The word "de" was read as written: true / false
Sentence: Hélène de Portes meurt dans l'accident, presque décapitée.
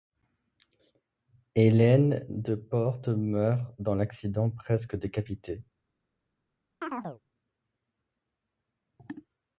true